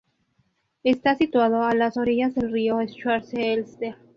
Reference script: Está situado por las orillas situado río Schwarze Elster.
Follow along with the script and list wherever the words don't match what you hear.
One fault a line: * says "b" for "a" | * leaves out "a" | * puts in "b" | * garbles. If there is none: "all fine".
* says "a" for "por"
* says "del" for "situado"